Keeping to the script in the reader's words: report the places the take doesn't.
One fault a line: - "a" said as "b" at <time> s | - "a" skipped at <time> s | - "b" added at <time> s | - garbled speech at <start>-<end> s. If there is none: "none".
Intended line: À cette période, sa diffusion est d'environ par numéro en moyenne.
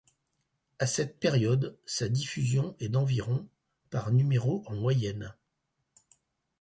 none